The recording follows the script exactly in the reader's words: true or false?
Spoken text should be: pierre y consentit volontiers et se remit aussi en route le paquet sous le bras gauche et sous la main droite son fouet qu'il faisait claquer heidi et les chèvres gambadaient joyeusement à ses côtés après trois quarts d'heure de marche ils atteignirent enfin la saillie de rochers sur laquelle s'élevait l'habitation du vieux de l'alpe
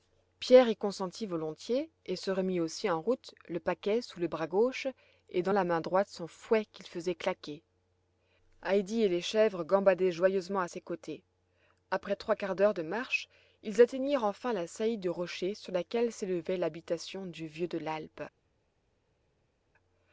false